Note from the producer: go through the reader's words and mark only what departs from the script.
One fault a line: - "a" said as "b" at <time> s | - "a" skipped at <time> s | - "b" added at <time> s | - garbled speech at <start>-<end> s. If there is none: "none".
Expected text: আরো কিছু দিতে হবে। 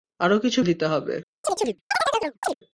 none